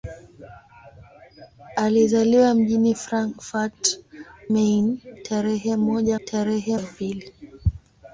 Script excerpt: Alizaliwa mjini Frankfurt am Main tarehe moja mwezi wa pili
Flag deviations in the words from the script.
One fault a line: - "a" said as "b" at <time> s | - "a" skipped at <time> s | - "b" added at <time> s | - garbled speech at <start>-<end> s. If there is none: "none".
- "am" skipped at 4.0 s
- "mwezi" said as "tarehe" at 6.2 s